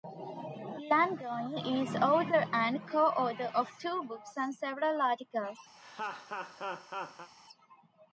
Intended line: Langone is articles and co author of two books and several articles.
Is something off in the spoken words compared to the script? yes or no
yes